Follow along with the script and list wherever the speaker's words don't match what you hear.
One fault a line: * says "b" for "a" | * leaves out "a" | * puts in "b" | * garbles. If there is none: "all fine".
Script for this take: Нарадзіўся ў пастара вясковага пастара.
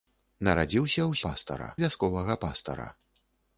all fine